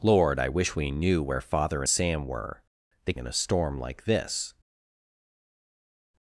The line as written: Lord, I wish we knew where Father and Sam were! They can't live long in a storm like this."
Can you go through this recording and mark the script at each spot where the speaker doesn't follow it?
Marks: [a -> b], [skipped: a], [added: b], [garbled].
Lord, I wish we knew where Father [skipped: and] Sam were! They [skipped: can't live long] in a storm like this."